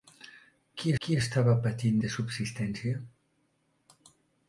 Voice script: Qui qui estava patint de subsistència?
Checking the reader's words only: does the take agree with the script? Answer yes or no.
yes